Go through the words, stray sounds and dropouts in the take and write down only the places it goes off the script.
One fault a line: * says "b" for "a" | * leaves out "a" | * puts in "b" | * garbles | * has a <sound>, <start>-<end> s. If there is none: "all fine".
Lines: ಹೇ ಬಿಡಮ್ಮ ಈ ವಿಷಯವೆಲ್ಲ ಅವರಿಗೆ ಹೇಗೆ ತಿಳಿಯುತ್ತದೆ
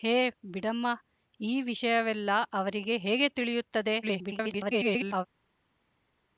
* garbles